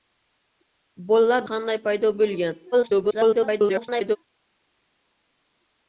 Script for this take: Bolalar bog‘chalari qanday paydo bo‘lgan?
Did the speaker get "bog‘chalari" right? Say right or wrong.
wrong